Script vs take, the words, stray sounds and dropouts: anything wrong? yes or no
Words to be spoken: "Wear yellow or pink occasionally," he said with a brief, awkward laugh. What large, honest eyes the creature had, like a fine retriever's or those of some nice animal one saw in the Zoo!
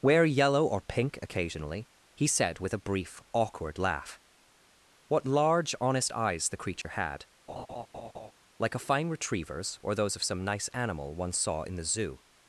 yes